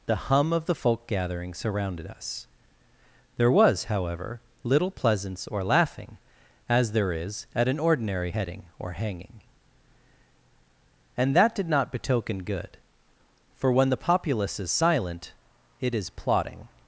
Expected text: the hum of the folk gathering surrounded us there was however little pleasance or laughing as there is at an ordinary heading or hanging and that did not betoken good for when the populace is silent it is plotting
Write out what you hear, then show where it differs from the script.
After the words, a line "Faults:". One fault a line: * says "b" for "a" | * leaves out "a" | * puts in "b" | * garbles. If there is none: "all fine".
the hum of the folk gathering surrounded us there was however little pleasance or laughing as there is at an ordinary heading or hanging and that did not betoken good for when the populace is silent it is plotting
Faults:
all fine